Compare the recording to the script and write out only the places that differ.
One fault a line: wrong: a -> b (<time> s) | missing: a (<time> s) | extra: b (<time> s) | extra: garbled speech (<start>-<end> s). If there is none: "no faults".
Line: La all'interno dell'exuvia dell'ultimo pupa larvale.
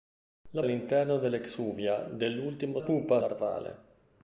no faults